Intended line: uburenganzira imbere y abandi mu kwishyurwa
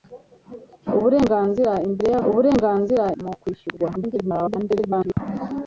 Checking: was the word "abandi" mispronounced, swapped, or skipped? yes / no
yes